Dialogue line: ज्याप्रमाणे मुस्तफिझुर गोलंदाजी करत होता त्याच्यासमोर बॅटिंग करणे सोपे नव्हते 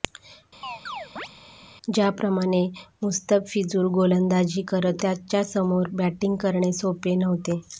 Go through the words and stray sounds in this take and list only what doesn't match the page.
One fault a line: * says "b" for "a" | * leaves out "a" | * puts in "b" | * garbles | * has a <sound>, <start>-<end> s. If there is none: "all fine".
* has a chirp, 0.6-1.3 s
* leaves out "होता"